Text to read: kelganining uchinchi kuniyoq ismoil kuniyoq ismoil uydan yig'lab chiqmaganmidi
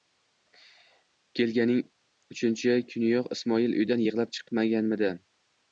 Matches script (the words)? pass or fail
fail